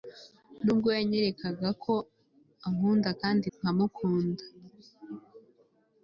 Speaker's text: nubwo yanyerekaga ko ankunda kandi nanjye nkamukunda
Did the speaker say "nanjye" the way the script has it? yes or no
no